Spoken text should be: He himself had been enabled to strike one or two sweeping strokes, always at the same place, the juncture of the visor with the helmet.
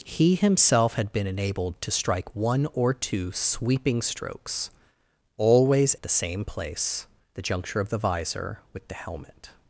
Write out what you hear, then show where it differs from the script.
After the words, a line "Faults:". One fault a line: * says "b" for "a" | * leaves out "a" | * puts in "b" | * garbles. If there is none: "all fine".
He himself had been enabled to strike one or two sweeping strokes, always at the same place, the juncture of the visor with the helmet.
Faults:
all fine